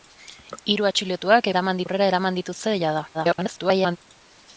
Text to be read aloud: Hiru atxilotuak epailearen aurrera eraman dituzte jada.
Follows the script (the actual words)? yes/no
no